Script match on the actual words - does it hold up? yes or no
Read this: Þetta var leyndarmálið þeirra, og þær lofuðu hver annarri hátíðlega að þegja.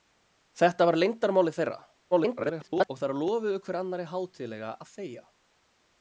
no